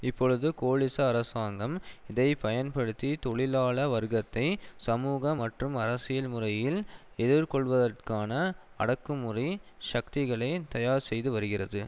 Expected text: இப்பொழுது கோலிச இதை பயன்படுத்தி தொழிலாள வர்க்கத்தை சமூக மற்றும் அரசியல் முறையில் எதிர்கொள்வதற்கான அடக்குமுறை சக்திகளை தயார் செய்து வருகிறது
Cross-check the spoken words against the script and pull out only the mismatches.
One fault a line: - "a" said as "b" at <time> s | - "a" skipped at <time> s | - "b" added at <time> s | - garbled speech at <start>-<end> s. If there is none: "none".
- "அரசாங்கம்" added at 1.1 s